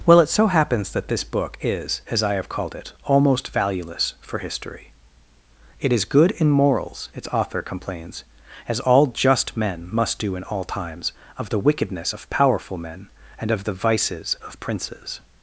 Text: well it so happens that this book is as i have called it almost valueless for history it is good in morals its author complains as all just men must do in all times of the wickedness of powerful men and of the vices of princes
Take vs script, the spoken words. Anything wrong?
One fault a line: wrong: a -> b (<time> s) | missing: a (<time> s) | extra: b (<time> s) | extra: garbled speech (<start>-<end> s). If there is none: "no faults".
no faults